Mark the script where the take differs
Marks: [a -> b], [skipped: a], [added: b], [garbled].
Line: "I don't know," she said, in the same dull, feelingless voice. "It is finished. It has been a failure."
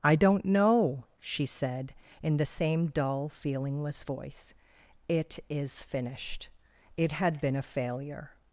"I don't know," she said, in the same dull, feelingless voice. "It is finished. It [has -> had] been a failure."